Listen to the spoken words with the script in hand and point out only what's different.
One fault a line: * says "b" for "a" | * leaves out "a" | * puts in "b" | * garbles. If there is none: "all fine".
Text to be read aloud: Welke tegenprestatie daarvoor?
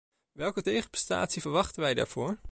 * puts in "verwachten wij"